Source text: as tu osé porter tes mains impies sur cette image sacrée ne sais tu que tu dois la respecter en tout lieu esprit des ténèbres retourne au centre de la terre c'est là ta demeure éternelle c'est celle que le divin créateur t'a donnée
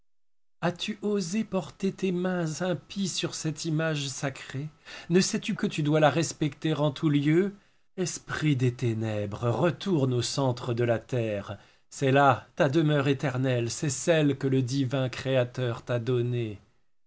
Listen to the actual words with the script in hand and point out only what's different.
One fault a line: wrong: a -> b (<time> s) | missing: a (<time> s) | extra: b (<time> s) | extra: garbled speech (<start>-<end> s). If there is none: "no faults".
no faults